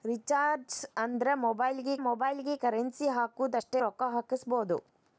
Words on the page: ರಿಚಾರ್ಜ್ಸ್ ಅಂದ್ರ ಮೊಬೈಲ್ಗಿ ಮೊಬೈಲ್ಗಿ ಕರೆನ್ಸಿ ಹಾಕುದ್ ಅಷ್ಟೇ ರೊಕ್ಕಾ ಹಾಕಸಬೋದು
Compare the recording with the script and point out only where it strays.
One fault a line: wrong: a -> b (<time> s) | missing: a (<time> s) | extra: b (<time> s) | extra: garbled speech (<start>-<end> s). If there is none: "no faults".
no faults